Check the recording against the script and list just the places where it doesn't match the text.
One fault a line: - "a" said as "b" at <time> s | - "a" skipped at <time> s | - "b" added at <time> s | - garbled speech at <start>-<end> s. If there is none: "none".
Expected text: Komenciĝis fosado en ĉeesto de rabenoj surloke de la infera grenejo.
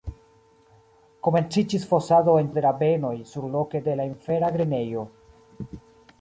- "ĉeesto" skipped at 2.5 s